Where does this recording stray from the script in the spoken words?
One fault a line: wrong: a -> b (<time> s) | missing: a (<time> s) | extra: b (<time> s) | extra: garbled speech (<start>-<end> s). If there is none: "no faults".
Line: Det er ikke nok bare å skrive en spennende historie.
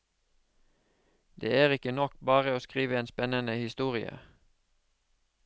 no faults